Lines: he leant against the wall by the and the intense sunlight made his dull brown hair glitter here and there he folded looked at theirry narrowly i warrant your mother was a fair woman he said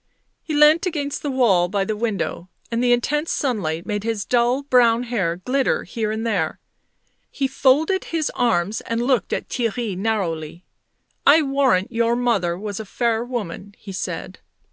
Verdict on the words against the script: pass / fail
fail